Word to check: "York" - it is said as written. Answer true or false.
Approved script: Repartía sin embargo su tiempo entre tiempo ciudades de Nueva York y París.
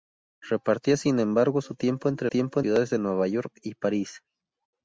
true